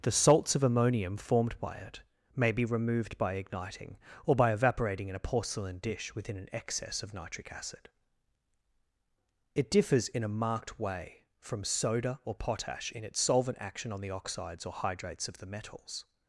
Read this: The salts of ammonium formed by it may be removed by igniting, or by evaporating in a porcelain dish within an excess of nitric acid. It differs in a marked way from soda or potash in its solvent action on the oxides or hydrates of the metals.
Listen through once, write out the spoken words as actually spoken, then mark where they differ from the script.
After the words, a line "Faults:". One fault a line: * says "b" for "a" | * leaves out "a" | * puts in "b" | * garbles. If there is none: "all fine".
The salts of ammonium formed by it may be removed by igniting, or by evaporating in a porcelain dish within an excess of nitric acid. It differs in a marked way from soda or potash in its solvent action on the oxides or hydrates of the metals.
Faults:
all fine